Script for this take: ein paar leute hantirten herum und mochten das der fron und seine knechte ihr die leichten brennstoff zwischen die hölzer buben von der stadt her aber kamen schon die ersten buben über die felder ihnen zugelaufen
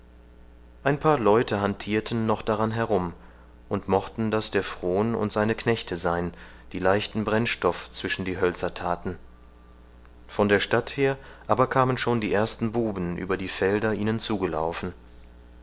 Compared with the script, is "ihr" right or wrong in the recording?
wrong